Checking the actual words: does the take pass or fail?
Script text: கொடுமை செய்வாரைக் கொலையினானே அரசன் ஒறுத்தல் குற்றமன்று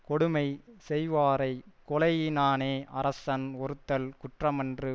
pass